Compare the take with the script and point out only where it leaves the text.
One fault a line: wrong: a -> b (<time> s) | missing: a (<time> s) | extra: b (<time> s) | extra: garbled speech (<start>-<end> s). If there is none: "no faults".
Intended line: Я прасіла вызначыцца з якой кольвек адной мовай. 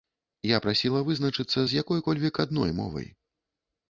no faults